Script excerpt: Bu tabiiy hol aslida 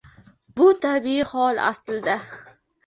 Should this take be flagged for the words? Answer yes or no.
no